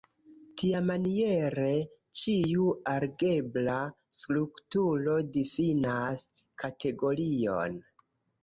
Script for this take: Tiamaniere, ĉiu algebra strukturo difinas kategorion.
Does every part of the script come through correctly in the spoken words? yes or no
yes